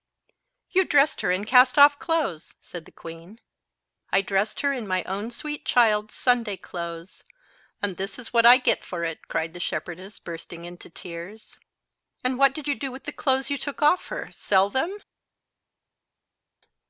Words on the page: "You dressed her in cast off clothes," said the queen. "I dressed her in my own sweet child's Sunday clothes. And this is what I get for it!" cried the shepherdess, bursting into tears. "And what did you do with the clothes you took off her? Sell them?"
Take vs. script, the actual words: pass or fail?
pass